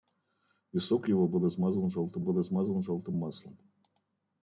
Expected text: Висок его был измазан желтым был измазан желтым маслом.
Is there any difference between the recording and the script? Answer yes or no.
no